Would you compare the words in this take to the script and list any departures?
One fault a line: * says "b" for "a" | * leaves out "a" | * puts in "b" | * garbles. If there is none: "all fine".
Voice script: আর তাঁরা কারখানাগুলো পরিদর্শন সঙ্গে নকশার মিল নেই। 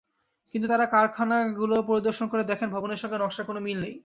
* says "কিন্তু" for "আর"
* puts in "করে দেখেন ভবনের"
* puts in "কোনো"